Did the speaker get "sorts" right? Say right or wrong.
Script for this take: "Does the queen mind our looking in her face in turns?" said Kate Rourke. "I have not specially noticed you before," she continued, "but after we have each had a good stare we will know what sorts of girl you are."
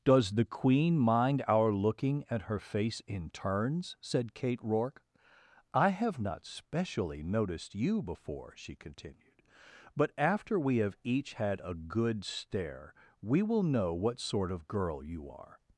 wrong